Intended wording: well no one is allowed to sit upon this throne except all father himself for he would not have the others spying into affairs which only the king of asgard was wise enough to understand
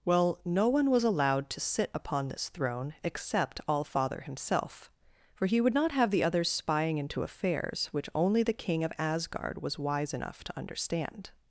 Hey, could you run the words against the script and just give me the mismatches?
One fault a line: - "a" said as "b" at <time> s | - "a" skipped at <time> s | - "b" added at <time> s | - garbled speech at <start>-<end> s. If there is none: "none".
- "is" said as "was" at 0.9 s